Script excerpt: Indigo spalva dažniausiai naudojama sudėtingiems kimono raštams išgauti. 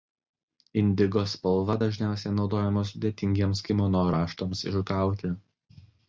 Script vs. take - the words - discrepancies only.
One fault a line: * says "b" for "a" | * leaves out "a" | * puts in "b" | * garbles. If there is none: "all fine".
all fine